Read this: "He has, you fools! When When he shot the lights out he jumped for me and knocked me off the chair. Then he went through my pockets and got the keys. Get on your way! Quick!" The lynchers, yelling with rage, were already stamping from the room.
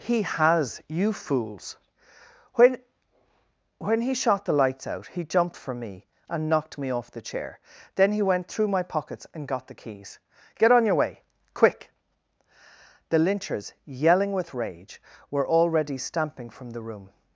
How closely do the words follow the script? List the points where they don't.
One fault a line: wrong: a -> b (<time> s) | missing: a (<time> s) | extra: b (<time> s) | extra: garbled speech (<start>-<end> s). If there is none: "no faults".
no faults